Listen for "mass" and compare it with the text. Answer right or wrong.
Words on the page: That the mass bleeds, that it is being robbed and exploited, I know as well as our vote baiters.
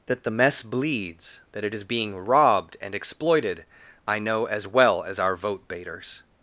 wrong